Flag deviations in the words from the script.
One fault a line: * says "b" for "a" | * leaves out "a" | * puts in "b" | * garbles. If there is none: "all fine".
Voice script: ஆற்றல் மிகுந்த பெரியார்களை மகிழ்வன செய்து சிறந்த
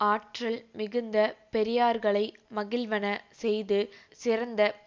all fine